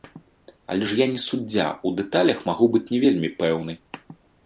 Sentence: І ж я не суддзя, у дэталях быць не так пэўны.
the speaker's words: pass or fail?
fail